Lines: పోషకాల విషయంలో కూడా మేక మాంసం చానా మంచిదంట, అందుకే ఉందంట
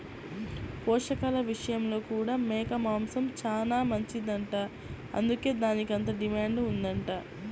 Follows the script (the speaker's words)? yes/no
no